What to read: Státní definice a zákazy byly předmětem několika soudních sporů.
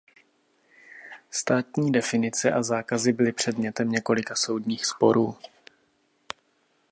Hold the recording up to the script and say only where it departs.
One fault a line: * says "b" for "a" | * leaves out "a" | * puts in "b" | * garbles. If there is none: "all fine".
all fine